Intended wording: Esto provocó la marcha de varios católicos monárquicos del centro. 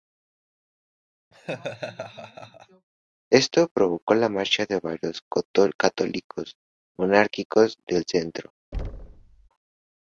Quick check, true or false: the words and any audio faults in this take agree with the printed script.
false